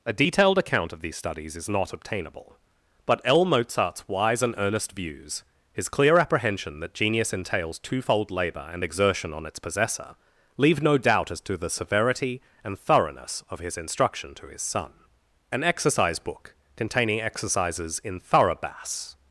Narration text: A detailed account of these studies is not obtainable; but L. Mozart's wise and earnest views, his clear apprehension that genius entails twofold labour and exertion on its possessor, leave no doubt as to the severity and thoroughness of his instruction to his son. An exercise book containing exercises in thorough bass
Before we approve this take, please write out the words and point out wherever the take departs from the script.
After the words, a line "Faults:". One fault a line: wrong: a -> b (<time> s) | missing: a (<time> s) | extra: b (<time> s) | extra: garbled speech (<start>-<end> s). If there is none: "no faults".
A detailed account of these studies is not obtainable; but L. Mozart's wise and earnest views, his clear apprehension that genius entails twofold labour and exertion on its possessor, leave no doubt as to the severity and thoroughness of his instruction to his son. An exercise book containing exercises in thorough bass
Faults:
no faults